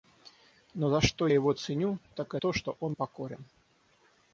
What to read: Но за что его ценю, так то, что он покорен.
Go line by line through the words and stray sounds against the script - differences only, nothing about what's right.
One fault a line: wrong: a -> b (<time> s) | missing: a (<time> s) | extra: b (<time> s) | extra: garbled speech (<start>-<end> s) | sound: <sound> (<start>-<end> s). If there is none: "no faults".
no faults